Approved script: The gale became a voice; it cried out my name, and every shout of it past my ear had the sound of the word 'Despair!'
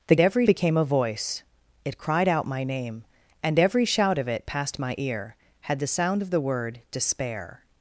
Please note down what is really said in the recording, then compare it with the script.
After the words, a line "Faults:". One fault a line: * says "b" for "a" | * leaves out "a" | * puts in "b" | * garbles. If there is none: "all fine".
The every became a voice; it cried out my name, and every shout of it past my ear had the sound of the word 'Despair!'
Faults:
* says "every" for "gale"